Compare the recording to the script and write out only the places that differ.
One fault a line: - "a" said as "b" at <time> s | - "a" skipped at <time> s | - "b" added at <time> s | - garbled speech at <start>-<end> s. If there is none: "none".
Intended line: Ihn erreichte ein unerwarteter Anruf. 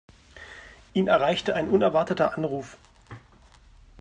none